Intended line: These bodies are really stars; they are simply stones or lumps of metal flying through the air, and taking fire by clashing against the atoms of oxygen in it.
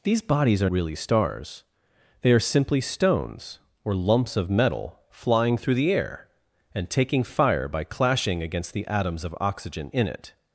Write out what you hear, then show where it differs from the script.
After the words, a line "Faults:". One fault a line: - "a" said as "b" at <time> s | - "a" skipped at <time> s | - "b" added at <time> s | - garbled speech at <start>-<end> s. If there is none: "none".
These bodies are really stars; they are simply stones or lumps of metal flying through the air, and taking fire by clashing against the atoms of oxygen in it.
Faults:
none